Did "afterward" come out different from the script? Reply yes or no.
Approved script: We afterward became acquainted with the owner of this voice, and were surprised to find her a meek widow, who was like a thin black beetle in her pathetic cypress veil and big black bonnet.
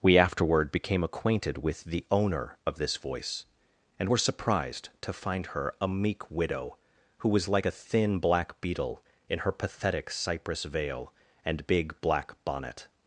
no